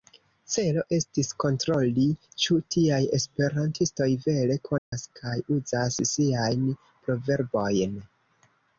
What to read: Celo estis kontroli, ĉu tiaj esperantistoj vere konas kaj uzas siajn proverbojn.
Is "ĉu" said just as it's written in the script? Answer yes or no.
yes